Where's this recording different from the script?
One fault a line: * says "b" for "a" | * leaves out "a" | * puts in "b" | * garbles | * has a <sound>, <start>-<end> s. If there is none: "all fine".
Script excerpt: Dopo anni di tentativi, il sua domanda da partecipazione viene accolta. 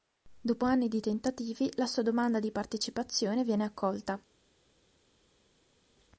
* says "la" for "il"
* says "di" for "da"